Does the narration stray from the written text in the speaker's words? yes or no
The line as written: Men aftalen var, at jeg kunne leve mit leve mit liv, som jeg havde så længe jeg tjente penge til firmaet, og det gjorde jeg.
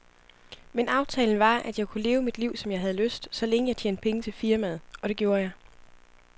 yes